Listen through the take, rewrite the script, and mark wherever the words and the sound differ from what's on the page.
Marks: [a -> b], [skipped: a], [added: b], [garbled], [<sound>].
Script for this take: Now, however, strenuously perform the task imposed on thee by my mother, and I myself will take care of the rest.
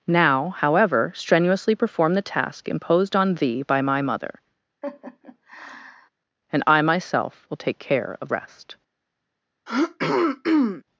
Now, however, strenuously perform the task imposed on thee by my mother, [laugh] and I myself will take care of [skipped: the] rest. [throat clearing]